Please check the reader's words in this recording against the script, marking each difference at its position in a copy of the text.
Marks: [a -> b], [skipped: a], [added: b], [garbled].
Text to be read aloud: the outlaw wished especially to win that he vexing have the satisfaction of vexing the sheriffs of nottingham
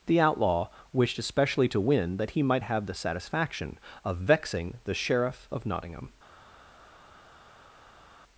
the outlaw wished especially to win that he [vexing -> might] have the satisfaction of vexing the [sheriffs -> sheriff] of nottingham